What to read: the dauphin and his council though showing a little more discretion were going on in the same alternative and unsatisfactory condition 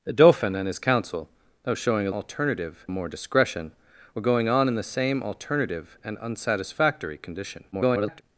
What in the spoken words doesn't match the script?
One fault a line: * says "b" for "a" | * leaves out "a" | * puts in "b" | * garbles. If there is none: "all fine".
* says "alternative" for "little"
* garbles